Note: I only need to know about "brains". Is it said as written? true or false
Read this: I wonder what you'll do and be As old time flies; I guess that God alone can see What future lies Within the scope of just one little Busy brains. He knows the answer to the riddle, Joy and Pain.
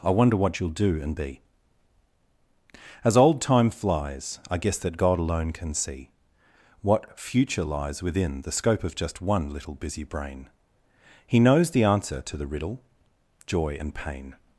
false